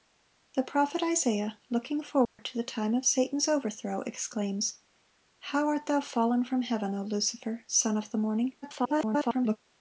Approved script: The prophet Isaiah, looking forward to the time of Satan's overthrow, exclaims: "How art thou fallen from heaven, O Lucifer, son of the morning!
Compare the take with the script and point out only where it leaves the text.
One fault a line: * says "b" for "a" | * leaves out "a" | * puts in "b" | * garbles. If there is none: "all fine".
* garbles